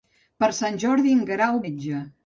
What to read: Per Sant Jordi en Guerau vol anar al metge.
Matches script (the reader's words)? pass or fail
fail